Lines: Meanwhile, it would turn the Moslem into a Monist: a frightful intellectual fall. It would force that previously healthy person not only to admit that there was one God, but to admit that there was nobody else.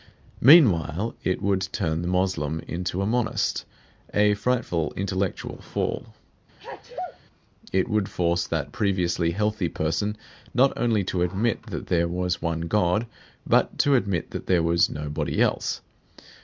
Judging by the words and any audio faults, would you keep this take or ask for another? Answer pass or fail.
fail